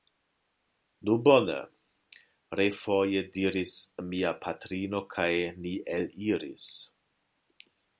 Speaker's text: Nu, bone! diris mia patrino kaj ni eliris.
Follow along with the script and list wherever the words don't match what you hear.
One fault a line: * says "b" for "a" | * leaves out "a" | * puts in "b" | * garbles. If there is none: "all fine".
* puts in "refoje"